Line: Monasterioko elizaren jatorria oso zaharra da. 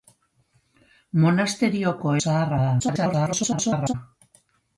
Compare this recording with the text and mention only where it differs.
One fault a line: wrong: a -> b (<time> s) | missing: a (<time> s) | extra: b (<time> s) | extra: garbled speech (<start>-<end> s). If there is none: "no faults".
missing: elizaren jatorria oso (2.1 s)
extra: garbled speech (2.8-3.9 s)